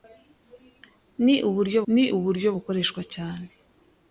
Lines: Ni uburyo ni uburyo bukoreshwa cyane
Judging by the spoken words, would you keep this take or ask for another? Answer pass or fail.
pass